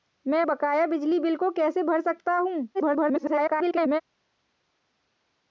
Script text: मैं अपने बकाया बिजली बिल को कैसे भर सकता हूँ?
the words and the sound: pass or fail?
fail